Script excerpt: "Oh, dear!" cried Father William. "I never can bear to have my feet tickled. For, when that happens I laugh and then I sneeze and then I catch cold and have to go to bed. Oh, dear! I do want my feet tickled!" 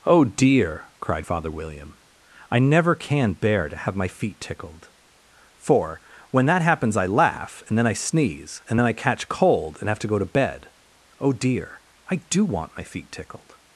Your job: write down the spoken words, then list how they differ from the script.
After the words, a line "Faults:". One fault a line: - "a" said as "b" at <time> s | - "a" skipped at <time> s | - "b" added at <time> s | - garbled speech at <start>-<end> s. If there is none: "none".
"Oh, dear!" cried Father William. "I never can bear to have my feet tickled. For, when that happens I laugh and then I sneeze and then I catch cold and have to go to bed. Oh, dear! I do want my feet tickled!"
Faults:
none